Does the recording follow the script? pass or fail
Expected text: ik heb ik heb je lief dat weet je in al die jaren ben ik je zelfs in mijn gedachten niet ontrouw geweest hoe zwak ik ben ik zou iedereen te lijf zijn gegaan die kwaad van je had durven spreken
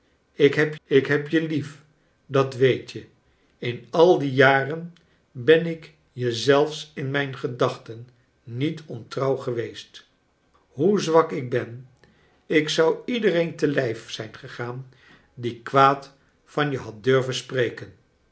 pass